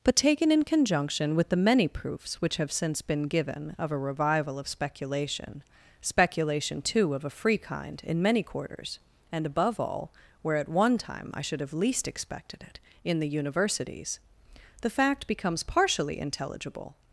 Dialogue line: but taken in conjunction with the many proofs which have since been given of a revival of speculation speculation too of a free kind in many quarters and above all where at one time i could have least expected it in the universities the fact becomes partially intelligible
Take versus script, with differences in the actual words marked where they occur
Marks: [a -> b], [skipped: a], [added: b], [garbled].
but taken in conjunction with the many proofs which have since been given of a revival of speculation speculation too of a free kind in many quarters and above all where at one time i [could -> should] have least expected it in the universities the fact becomes partially intelligible